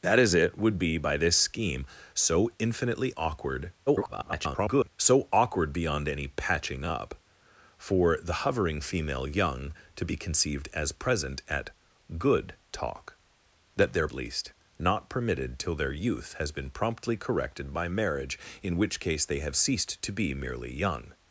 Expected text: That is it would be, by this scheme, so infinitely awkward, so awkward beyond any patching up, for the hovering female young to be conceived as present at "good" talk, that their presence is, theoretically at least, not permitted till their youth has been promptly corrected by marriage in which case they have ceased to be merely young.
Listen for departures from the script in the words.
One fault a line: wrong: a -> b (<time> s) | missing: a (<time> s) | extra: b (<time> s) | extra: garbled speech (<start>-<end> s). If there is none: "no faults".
extra: garbled speech (3.9-4.9 s)
missing: presence is theoretically (14.1 s)